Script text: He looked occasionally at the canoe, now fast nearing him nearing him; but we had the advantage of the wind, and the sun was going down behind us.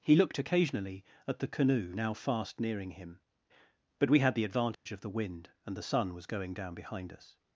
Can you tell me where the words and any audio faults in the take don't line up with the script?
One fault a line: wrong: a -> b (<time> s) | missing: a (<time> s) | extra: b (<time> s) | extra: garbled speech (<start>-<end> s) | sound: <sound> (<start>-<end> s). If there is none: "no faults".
missing: nearing him (3.2 s)
sound: dropout (4.7-4.9 s)